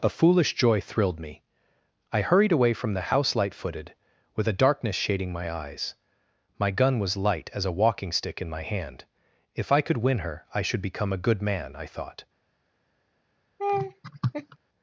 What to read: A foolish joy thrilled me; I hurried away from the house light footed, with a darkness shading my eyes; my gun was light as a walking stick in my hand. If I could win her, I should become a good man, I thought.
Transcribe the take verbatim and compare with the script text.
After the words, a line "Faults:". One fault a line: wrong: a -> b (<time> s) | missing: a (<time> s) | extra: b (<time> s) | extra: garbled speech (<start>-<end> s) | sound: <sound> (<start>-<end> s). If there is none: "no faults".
A foolish joy thrilled me; I hurried away from the house light footed, with a darkness shading my eyes; my gun was light as a walking stick in my hand. If I could win her, I should become a good man, I thought.
Faults:
sound: laugh (13.6-14.6 s)